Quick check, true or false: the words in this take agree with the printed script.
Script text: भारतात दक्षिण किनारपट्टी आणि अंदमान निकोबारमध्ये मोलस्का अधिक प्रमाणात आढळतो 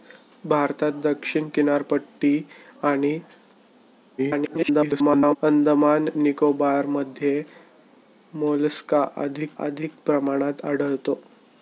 false